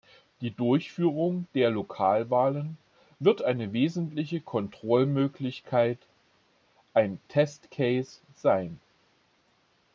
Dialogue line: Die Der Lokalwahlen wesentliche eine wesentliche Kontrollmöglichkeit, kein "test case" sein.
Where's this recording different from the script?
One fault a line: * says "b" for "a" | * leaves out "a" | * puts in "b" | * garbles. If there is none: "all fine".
* puts in "Durchführung"
* says "wird" for "wesentliche"
* says "ein" for "kein"